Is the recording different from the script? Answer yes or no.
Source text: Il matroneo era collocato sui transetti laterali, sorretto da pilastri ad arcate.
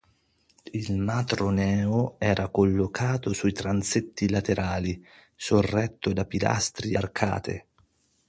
yes